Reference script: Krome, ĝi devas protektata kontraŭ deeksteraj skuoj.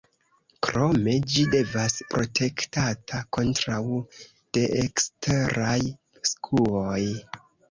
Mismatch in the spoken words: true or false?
false